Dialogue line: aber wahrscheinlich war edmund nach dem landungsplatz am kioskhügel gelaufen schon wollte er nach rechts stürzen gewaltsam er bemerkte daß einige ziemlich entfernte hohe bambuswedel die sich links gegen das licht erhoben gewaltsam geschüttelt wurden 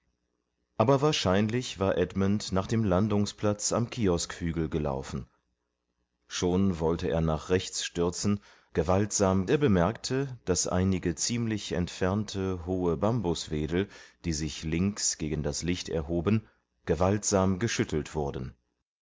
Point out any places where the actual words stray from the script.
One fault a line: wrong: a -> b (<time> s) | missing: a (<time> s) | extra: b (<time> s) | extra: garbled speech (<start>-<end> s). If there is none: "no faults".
no faults